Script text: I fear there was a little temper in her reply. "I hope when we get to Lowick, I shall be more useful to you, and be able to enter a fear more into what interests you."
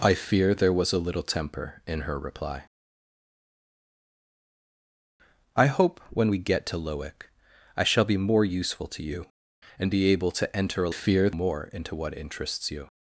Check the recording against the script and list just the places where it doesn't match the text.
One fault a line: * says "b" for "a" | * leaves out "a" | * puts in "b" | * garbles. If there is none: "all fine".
all fine